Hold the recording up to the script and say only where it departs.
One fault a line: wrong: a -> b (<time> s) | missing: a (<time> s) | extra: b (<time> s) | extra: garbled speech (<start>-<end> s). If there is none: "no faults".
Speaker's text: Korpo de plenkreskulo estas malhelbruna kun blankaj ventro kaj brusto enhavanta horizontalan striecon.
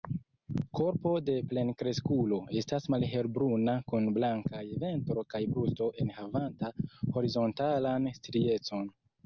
no faults